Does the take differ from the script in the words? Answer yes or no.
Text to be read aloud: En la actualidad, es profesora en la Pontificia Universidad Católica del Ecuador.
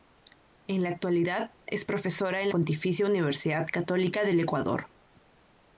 yes